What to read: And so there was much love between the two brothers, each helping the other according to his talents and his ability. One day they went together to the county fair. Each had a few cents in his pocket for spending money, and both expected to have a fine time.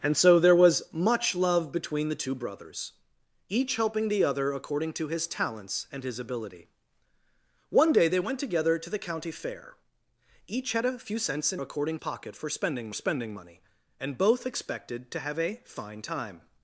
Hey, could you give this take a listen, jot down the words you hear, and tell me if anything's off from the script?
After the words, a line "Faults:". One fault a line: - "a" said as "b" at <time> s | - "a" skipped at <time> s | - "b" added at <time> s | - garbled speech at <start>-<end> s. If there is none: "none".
And so there was much love between the two brothers, each helping the other according to his talents and his ability. One day they went together to the county fair. Each had a few cents in according pocket for spending spending money, and both expected to have a fine time.
Faults:
- "his" said as "according" at 11.6 s
- "spending" added at 12.9 s